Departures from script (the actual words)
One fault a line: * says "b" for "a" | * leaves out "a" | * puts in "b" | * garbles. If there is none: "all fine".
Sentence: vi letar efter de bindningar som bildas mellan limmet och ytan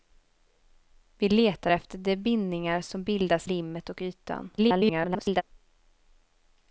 * leaves out "mellan"
* garbles